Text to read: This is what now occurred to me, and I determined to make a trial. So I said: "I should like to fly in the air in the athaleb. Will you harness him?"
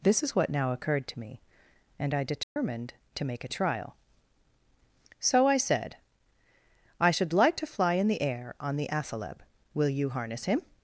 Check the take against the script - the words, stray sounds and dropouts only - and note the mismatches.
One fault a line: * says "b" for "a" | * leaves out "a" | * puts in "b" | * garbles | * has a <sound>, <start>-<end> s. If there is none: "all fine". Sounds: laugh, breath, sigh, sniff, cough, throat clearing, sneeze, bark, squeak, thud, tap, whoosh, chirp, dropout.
* has a dropout, 2.4-2.6 s
* says "on" for "in"